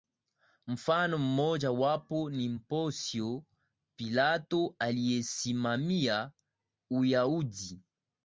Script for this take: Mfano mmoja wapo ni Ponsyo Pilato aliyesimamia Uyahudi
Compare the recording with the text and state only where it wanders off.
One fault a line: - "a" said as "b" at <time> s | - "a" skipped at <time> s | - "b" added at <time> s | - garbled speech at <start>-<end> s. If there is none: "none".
none